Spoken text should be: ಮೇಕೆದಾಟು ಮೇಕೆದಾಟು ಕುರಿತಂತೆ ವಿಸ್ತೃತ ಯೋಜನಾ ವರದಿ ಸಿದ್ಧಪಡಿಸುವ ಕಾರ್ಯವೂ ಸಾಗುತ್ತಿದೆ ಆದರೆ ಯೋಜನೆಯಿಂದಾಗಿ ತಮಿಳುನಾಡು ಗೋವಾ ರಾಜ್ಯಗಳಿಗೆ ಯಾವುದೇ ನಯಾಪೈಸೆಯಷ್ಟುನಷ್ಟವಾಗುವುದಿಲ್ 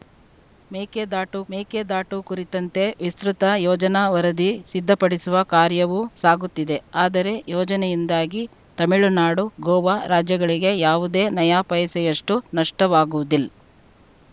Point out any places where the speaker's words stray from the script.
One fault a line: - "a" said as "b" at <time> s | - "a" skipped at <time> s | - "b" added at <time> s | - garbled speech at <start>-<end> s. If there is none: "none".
none